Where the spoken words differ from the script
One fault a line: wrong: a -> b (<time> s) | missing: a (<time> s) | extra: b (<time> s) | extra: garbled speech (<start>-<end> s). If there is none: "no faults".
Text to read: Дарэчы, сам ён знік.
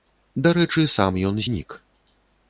no faults